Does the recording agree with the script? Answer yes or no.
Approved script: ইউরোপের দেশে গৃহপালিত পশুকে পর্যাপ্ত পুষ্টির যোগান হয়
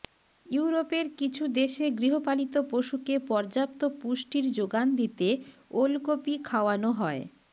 no